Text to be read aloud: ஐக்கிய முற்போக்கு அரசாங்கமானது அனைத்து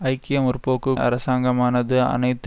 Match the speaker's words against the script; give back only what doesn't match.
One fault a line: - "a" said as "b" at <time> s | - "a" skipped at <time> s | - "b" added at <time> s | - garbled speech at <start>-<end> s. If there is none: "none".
none